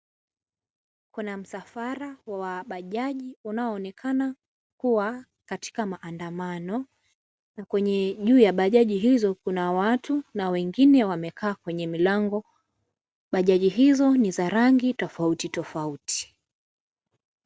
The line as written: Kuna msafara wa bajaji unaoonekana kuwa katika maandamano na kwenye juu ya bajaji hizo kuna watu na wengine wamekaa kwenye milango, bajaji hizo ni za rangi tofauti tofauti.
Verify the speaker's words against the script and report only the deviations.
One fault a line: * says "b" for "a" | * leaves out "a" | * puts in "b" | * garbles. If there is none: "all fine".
all fine